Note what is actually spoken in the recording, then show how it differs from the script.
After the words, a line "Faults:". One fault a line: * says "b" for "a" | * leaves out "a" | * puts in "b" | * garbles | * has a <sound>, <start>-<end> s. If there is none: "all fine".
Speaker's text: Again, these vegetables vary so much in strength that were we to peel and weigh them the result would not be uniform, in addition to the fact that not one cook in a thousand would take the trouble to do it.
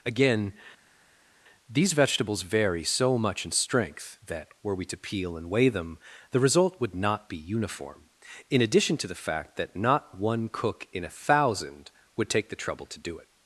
Again, these vegetables vary so much in strength that were we to peel and weigh them the result would not be uniform, in addition to the fact that not one cook in a thousand would take the trouble to do it.
Faults:
all fine